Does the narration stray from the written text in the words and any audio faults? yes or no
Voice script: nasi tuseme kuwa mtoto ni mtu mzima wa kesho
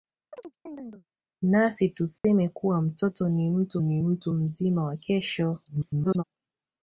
yes